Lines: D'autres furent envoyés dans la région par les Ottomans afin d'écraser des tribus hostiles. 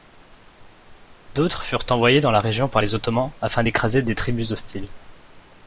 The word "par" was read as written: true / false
true